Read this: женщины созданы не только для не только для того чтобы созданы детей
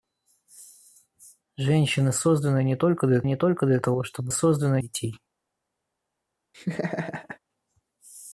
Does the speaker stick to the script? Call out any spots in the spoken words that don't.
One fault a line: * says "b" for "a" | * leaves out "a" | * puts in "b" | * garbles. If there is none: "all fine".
all fine